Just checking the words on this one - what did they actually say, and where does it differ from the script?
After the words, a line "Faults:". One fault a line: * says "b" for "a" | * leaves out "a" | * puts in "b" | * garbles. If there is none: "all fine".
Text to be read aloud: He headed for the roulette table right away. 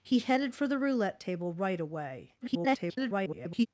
He headed for the roulette table right away. [garbled]
Faults:
* garbles